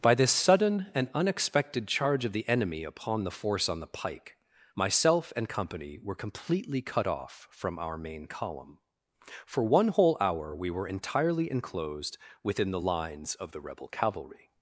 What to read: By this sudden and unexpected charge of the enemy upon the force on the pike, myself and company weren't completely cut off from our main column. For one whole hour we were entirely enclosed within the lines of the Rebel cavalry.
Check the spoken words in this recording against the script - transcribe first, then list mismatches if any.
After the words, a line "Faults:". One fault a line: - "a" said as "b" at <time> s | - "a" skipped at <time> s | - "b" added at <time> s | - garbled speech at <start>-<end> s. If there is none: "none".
By this sudden and unexpected charge of the enemy upon the force on the pike, myself and company were completely cut off from our main column. For one whole hour we were entirely enclosed within the lines of the Rebel cavalry.
Faults:
- "weren't" said as "were" at 6.0 s